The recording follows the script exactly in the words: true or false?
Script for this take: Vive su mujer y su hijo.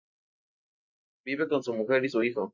false